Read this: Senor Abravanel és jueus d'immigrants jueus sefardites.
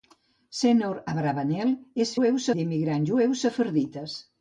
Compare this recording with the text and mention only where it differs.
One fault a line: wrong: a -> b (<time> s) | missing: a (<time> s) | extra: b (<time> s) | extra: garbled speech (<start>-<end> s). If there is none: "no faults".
no faults